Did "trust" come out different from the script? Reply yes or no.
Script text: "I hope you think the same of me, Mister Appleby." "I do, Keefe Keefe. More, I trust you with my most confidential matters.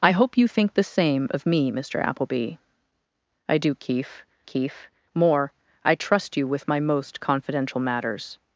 no